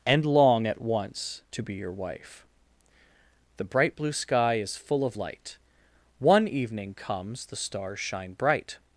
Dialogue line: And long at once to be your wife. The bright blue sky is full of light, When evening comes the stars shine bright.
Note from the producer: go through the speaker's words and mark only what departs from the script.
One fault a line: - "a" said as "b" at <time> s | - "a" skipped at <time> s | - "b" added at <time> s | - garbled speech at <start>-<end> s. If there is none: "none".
- "When" said as "One" at 6.2 s